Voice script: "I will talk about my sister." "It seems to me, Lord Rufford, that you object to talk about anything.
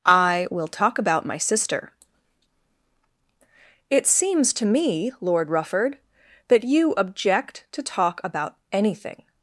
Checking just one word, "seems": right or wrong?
right